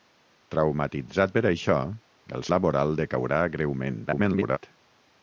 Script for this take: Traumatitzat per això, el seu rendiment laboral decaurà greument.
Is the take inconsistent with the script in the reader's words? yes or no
yes